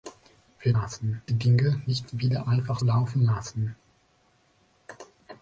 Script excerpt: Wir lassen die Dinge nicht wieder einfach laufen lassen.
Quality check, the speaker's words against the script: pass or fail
pass